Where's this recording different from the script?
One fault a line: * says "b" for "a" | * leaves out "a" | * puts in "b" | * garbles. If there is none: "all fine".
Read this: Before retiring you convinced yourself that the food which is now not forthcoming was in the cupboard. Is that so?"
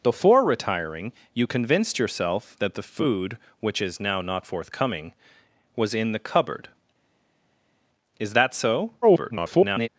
* garbles